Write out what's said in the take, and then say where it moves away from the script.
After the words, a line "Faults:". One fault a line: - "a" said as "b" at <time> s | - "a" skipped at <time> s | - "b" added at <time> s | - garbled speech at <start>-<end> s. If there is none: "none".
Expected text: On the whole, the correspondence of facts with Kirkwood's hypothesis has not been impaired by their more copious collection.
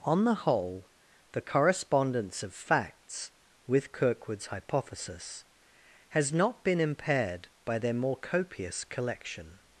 On the whole, the correspondence of facts with Kirkwood's hypothesis has not been impaired by their more copious collection.
Faults:
none